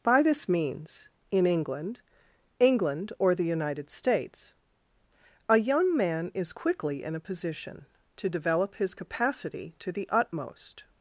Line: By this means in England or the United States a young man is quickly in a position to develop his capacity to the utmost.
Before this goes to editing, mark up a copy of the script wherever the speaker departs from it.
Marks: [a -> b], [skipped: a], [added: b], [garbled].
By this means in England [added: England] or the United States a young man is quickly in a position to develop his capacity to the utmost.